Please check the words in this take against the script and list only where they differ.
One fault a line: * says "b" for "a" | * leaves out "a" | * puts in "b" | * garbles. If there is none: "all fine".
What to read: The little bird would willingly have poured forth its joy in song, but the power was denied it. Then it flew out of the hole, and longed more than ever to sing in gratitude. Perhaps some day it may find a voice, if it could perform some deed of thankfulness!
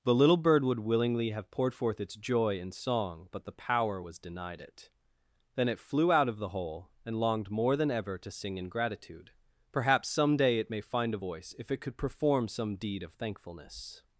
all fine